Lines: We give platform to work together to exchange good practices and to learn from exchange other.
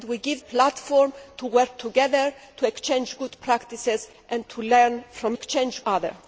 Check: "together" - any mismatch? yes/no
no